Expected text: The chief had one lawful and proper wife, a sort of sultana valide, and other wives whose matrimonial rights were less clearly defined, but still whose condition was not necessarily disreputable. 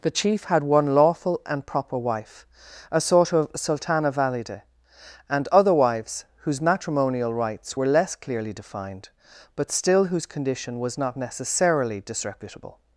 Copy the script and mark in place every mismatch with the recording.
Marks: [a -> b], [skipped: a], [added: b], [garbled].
The chief had one lawful and proper wife, a sort of sultana valide, and other wives whose matrimonial rights were less clearly defined, but still whose condition was not necessarily disreputable.